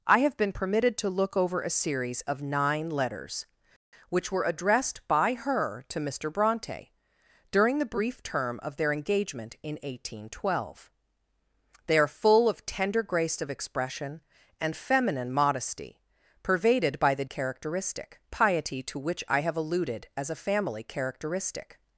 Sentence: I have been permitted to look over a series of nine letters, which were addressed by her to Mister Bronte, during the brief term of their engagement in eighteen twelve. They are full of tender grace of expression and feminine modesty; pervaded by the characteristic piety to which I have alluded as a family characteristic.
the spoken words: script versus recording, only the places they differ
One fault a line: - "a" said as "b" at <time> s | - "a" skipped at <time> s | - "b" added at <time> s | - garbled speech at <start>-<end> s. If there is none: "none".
none